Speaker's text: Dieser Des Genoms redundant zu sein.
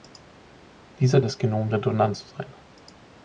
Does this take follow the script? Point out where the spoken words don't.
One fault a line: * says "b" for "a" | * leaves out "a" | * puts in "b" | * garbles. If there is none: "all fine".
all fine